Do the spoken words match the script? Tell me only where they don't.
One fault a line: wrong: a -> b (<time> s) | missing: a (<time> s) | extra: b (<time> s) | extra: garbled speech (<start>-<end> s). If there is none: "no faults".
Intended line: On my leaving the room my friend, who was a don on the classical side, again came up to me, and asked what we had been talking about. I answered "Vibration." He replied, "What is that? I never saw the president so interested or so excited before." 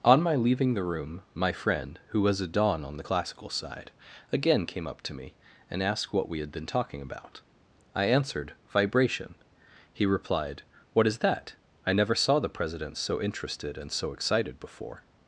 wrong: or -> and (13.8 s)